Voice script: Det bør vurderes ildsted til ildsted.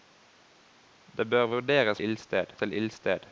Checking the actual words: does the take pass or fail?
pass